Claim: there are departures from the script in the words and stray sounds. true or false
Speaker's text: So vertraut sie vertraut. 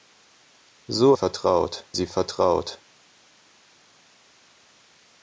false